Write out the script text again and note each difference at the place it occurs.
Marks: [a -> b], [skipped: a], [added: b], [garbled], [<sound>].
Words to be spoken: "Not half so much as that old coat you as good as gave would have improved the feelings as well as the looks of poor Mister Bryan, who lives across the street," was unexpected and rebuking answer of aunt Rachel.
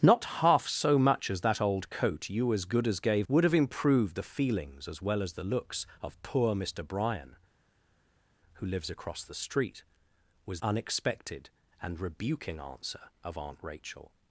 "Not half so much as that old coat you as good as gave would have improved the feelings as well as the looks of poor Mister Bryan, who lives across the street," was unexpected and rebuking answer of aunt Rachel.